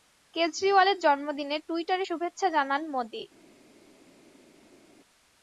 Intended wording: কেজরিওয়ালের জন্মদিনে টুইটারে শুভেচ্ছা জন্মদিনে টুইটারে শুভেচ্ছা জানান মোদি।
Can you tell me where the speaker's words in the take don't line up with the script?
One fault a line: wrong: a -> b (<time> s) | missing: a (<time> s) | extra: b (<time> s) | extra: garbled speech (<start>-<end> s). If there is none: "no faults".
missing: জন্মদিনে টুইটারে শুভেচ্ছা (2.5 s)